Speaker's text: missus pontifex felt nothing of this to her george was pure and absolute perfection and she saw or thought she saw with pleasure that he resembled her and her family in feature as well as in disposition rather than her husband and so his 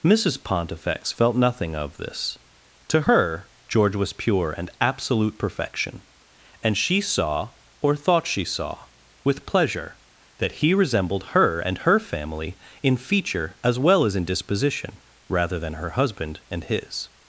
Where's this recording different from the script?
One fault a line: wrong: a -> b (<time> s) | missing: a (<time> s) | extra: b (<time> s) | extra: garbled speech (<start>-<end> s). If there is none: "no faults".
missing: so (16.6 s)